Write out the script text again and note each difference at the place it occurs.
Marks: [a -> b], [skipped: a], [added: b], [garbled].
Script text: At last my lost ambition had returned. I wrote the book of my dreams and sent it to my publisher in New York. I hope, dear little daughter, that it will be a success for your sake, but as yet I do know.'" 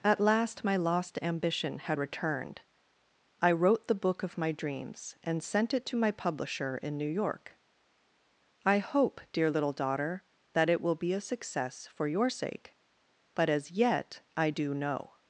At last my lost ambition had returned. I wrote the book of my dreams and sent it to my publisher in New York. I hope, dear little daughter, that it will be a success for your sake, but as yet I do know.'"